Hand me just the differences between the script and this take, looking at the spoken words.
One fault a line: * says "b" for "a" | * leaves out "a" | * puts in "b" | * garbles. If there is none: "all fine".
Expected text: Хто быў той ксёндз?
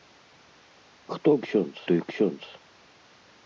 * says "ксёндз" for "быў"